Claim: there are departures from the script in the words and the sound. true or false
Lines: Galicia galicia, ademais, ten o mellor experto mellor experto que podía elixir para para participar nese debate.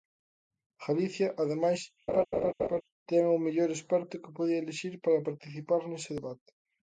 true